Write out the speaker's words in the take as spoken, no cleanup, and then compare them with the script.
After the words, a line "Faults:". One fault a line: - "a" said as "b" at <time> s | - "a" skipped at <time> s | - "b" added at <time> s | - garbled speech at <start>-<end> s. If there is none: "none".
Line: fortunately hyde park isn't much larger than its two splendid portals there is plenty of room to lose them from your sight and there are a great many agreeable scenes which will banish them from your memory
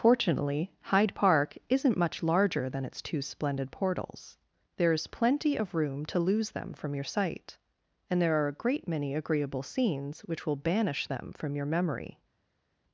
fortunately hyde park isn't much larger than its two splendid portals there is plenty of room to lose them from your sight and there are a great many agreeable scenes which will banish them from your memory
Faults:
none